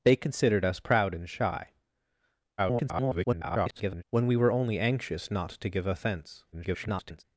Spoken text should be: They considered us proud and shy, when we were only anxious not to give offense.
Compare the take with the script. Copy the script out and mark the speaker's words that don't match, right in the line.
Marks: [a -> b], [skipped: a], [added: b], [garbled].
They considered us proud and shy, [garbled] when we were only anxious not to give offense. [garbled]